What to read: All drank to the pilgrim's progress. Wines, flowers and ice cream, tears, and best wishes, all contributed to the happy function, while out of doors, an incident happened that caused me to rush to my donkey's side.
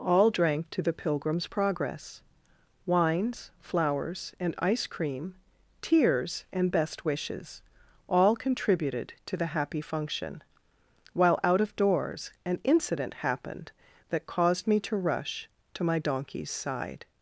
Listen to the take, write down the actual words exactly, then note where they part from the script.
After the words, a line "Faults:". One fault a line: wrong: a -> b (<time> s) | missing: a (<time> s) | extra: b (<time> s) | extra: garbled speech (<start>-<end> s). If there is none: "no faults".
All drank to the pilgrim's progress. Wines, flowers and ice cream, tears, and best wishes, all contributed to the happy function, while out of doors, an incident happened that caused me to rush to my donkey's side.
Faults:
no faults